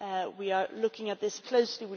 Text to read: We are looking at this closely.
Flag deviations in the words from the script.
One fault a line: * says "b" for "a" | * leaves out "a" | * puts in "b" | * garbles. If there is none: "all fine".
all fine